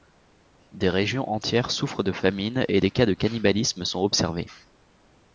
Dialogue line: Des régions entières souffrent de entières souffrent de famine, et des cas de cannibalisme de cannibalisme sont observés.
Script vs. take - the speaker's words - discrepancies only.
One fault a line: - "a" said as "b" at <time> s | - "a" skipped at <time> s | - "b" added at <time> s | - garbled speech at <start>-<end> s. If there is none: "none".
- "entières souffrent de" skipped at 2.1 s
- "de cannibalisme" skipped at 3.8 s